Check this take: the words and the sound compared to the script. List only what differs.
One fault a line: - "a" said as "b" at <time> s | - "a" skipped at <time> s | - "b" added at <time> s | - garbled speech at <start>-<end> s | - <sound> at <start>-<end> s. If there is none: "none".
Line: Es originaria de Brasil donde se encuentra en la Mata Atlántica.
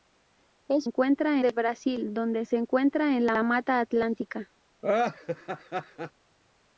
- "originaria" said as "encuentra" at 0.8 s
- "la" added at 3.3 s
- laugh at 4.8-6.1 s